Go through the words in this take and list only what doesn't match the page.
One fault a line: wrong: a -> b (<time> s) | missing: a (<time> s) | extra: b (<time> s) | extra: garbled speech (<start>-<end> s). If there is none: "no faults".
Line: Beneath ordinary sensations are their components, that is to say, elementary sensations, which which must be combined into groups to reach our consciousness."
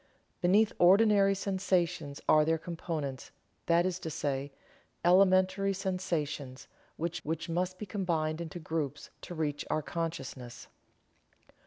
no faults